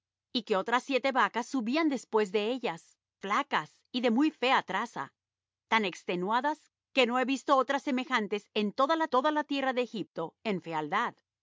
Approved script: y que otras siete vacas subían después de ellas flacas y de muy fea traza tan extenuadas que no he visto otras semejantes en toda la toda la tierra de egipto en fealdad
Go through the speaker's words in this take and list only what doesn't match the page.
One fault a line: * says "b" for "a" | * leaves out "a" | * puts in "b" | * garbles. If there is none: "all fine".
all fine